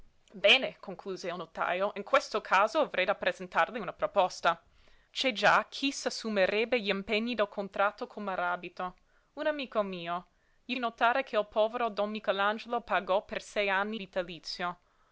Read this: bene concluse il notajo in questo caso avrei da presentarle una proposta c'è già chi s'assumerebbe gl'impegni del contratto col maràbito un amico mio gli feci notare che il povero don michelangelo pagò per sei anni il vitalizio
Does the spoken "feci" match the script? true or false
false